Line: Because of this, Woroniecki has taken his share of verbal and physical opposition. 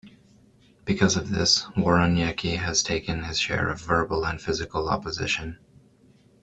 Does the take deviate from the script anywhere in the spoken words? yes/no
no